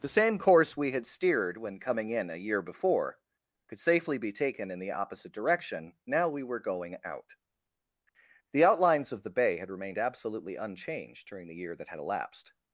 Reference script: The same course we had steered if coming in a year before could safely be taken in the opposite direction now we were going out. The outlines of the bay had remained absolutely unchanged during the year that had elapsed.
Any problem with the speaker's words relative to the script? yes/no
yes